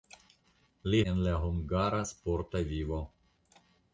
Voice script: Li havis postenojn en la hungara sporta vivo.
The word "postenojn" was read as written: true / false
false